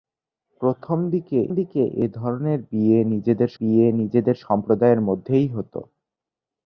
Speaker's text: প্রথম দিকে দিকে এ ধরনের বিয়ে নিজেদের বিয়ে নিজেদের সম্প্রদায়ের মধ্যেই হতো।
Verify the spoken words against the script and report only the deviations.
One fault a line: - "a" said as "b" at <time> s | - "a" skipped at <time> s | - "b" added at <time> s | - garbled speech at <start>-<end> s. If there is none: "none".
none